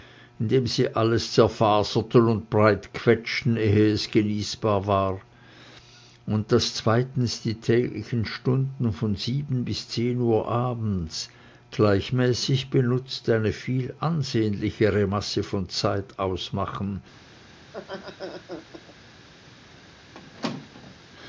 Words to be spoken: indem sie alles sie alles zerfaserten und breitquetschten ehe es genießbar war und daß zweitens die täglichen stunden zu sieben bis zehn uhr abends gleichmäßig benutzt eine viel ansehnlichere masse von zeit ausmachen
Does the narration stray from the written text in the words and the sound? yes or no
yes